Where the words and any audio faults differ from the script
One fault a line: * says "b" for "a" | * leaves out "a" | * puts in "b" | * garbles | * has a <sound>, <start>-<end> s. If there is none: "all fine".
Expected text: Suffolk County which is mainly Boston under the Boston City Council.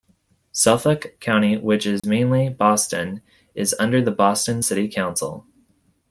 * has a dropout, 2.0-2.0 s
* puts in "is"